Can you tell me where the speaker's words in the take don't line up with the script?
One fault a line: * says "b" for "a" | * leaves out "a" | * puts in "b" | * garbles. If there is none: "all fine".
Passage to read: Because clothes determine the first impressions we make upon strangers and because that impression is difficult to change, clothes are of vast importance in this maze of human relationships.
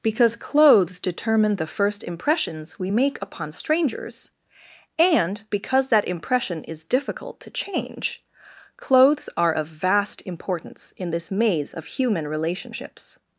all fine